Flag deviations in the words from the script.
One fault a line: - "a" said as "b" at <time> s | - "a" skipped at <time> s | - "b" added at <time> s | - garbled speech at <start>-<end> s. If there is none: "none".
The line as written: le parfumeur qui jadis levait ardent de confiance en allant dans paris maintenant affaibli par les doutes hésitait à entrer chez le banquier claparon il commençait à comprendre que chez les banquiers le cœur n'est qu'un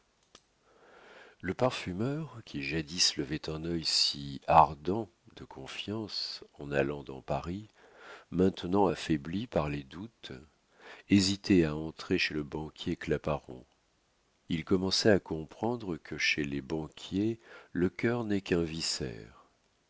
- "un œil si" added at 3.5 s